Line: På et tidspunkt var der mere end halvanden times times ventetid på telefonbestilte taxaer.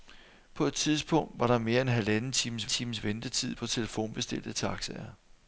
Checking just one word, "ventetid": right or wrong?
right